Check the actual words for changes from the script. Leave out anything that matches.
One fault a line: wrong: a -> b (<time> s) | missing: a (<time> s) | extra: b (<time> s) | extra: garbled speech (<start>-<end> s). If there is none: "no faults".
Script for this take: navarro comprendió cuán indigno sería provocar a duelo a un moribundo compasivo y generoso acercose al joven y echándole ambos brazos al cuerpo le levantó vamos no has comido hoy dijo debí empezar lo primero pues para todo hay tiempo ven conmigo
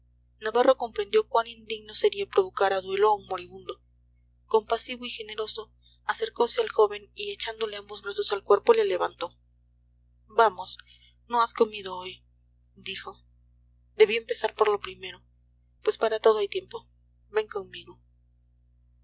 extra: por (14.6 s)